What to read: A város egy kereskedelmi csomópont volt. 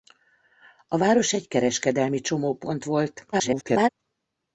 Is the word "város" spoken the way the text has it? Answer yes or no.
yes